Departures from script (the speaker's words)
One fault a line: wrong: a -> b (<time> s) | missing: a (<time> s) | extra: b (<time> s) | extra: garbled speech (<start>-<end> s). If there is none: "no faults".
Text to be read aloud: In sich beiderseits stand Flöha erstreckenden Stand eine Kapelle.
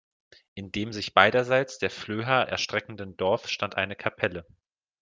extra: dem (0.7 s)
wrong: stand -> der (1.8 s)
extra: Dorf (3.2 s)